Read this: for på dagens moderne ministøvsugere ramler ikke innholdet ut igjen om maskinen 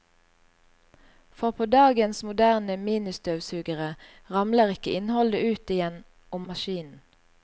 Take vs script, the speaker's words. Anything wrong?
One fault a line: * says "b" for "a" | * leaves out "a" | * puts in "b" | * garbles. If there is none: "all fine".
all fine